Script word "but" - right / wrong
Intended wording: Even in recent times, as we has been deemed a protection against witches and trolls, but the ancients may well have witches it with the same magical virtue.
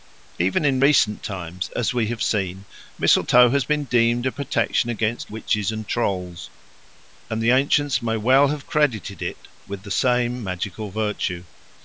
wrong